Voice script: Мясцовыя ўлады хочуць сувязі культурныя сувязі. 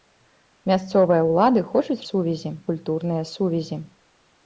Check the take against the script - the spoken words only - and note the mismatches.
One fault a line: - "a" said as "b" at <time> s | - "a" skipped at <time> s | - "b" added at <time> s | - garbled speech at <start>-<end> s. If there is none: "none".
none